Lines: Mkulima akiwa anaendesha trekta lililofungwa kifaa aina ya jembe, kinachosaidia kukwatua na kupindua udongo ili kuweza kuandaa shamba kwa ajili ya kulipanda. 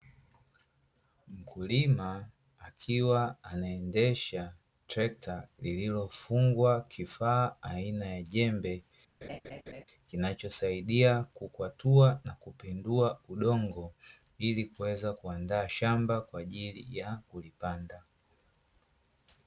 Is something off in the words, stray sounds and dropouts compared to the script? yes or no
yes